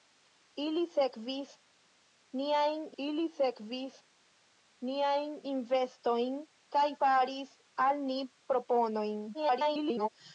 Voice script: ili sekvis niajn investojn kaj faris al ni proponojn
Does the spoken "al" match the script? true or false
true